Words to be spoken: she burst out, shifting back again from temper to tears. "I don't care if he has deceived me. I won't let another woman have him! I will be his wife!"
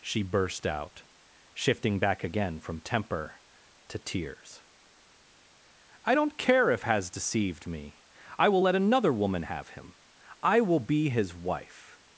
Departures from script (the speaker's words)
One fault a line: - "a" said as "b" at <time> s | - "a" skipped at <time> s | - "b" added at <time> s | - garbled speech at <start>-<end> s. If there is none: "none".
- "he" skipped at 6.8 s
- "won't" said as "will" at 8.5 s